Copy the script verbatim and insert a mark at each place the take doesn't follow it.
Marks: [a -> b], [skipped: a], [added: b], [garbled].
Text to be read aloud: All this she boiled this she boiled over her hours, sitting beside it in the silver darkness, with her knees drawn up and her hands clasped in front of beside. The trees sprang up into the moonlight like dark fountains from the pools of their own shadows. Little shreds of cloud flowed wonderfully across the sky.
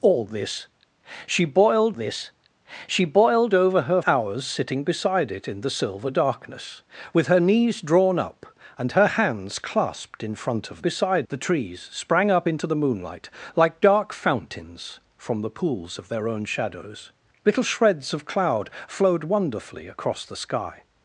All this she boiled this she boiled over her hours, sitting beside it in the silver darkness, with her knees drawn up and her hands clasped in front of beside. The trees sprang up into the moonlight like dark fountains from the pools of their own shadows. Little shreds of cloud flowed wonderfully across the sky.